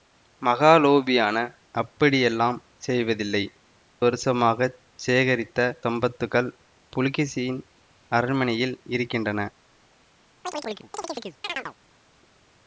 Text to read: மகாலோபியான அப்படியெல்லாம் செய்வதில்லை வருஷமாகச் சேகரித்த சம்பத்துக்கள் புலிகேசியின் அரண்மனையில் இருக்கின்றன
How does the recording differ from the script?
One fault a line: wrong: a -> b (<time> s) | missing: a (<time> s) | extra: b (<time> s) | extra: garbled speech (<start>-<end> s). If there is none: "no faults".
no faults